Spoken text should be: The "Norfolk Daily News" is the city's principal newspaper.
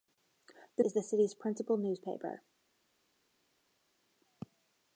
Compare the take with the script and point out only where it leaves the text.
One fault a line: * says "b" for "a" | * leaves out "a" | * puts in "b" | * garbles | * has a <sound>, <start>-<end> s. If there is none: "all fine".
* leaves out "Norfolk Daily News"